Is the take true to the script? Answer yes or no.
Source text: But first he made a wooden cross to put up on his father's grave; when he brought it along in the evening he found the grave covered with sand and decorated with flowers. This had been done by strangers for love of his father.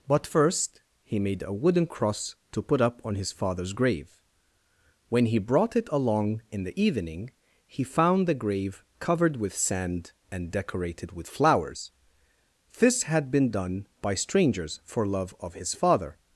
yes